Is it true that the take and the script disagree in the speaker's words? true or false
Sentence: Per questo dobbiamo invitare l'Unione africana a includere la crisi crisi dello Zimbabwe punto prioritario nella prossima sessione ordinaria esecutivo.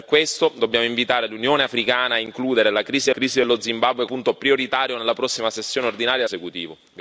false